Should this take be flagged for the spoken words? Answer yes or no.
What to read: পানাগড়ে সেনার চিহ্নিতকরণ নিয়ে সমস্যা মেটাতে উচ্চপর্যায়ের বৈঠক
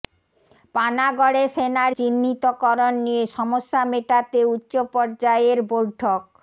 no